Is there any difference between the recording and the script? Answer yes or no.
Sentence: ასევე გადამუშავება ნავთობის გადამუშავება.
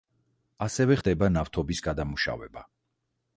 yes